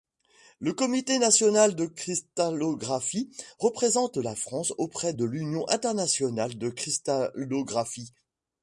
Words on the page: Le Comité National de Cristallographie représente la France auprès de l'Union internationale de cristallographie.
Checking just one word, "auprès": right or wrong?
right